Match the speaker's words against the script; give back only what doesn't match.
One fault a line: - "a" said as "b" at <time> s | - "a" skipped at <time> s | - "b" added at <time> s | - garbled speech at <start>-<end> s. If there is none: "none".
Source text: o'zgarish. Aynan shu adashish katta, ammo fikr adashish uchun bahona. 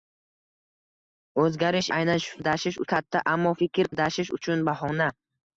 none